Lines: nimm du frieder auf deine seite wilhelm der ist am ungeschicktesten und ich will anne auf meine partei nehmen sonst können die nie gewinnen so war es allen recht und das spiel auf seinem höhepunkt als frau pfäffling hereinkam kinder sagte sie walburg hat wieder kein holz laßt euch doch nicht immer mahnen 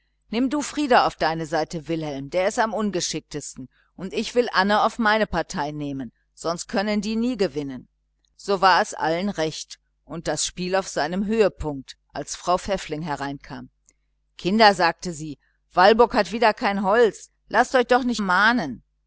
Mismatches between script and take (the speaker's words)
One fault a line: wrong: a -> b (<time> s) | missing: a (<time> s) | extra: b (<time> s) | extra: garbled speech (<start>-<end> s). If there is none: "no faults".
missing: immer (18.2 s)